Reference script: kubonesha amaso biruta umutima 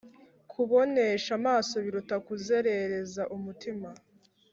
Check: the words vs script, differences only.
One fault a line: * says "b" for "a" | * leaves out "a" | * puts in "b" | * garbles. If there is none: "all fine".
* puts in "kuzerereza"